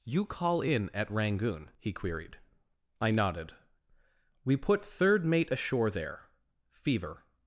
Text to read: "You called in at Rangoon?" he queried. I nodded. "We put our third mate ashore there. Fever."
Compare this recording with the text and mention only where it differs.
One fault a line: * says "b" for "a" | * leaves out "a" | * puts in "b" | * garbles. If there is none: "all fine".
* says "call" for "called"
* leaves out "our"